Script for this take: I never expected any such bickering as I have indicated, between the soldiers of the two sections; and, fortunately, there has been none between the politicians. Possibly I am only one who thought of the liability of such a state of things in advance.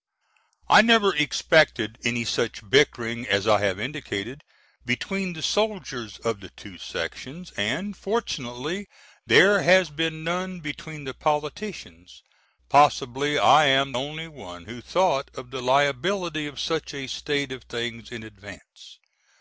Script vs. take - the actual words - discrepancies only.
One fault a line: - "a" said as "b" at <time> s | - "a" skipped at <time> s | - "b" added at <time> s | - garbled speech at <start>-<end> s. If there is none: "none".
none